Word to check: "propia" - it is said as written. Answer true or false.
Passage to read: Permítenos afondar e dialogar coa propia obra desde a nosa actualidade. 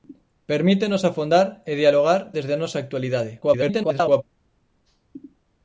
false